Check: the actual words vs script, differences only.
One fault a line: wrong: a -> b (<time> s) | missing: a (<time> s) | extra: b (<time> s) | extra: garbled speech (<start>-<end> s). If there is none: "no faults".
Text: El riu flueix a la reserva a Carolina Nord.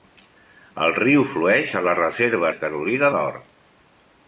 no faults